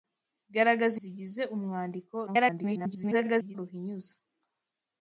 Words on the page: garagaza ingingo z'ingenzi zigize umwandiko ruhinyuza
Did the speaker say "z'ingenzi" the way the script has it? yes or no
no